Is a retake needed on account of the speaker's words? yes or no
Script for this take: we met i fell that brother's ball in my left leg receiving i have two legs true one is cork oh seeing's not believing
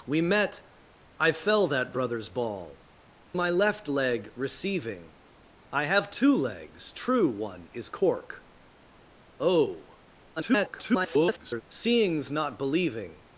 yes